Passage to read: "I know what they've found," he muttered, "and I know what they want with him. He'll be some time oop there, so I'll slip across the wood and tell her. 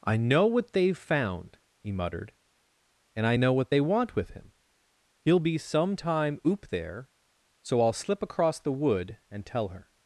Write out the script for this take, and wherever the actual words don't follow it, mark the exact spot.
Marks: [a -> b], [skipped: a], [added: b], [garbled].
"I know what they've found," he muttered, "and I know what they want with him. He'll be some time oop there, so I'll slip across the wood and tell her.